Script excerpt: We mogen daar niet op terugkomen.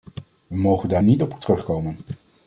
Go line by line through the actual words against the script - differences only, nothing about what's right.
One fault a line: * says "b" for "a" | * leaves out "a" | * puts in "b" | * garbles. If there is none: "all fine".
all fine